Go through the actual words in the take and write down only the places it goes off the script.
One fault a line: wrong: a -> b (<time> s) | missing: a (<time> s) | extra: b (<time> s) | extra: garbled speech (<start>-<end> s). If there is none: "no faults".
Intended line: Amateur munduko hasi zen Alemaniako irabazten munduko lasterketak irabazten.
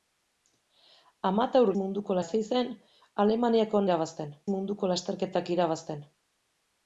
no faults